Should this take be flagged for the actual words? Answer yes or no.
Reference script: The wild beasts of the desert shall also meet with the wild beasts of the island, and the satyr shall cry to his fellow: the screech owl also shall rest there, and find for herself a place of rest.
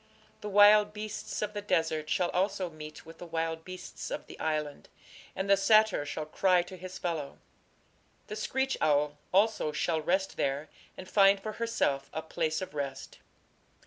no